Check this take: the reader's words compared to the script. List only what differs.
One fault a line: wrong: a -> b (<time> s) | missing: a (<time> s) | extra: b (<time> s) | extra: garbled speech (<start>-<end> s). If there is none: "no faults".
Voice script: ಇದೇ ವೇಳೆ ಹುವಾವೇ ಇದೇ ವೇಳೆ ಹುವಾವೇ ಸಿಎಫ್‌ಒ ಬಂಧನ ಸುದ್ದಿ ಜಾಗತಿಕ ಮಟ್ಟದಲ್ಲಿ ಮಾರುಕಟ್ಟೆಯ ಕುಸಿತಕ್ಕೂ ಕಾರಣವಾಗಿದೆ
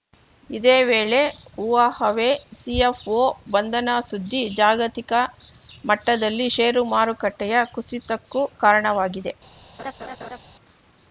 missing: ಇದೇ ವೇಳೆ ಹುವಾವೇ (2.3 s)
extra: ಷೇರು (6.5 s)